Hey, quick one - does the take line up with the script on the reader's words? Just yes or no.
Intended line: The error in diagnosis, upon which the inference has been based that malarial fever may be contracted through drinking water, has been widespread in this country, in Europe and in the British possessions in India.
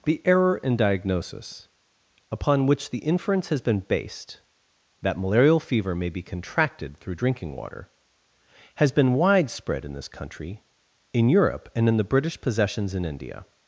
yes